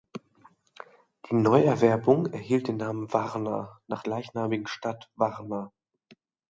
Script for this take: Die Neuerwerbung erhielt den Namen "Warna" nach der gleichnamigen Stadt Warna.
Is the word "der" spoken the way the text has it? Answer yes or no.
no